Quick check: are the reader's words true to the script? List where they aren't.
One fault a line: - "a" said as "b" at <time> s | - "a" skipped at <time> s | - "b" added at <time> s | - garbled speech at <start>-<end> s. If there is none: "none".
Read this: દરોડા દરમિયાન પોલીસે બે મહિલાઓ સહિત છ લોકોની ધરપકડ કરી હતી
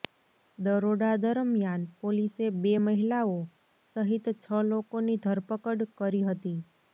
none